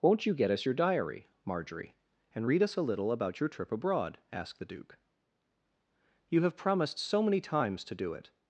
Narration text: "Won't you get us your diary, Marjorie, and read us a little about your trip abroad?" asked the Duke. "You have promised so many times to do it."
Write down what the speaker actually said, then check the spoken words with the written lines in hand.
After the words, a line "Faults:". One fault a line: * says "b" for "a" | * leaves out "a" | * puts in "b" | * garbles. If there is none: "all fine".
"Won't you get us your diary, Marjorie, and read us a little about your trip abroad?" asked the Duke. "You have promised so many times to do it."
Faults:
all fine